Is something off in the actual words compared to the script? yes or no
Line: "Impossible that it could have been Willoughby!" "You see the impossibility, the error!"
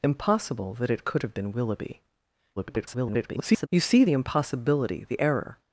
yes